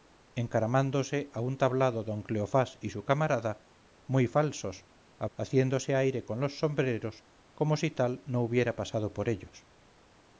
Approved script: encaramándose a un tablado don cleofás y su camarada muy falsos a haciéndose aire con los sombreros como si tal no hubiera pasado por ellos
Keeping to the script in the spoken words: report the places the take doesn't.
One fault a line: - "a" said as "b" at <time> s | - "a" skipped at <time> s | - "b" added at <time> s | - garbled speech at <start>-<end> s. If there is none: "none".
none